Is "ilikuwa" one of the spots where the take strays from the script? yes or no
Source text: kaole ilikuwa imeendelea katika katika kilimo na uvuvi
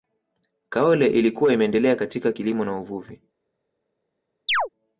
no